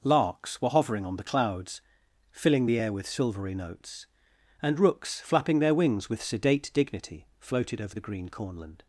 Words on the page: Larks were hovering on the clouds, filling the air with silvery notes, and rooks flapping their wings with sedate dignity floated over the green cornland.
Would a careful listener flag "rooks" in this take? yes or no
no